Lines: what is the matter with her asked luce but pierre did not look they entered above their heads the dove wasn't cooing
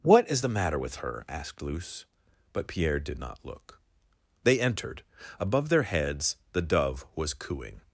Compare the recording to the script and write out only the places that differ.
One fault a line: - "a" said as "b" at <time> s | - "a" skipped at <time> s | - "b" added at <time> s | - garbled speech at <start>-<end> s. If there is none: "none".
- "wasn't" said as "was" at 7.1 s